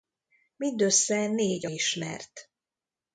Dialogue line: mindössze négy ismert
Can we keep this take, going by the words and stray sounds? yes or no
yes